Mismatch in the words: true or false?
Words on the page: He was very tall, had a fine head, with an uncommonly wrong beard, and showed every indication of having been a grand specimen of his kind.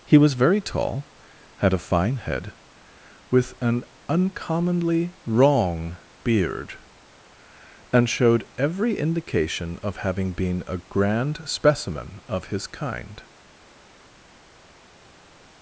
false